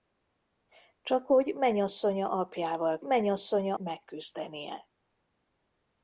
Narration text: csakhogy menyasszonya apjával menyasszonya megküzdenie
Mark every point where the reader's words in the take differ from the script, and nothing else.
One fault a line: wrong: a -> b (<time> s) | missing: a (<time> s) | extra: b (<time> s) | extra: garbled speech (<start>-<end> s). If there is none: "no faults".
no faults